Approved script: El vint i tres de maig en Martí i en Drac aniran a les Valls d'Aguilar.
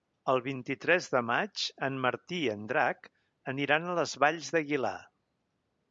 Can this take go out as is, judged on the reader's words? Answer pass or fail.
pass